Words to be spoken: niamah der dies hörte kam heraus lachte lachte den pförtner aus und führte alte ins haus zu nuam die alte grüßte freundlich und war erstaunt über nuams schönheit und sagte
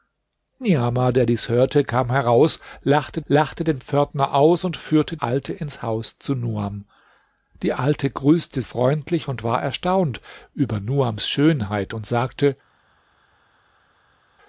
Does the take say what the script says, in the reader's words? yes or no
yes